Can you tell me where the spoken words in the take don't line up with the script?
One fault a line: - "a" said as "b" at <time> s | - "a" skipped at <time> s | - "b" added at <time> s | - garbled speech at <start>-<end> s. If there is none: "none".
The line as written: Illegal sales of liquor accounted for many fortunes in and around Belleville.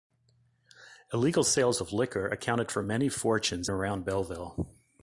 - "in and" skipped at 3.7 s